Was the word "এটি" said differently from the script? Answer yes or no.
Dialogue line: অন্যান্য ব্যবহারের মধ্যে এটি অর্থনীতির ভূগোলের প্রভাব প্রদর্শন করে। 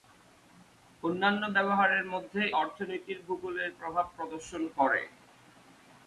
yes